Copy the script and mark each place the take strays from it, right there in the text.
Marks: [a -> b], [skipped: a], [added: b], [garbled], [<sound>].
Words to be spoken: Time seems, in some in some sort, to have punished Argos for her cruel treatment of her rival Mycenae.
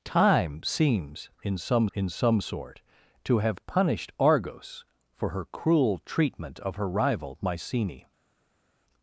Time seems, in some in some sort, to have punished Argos for her cruel treatment of her rival Mycenae.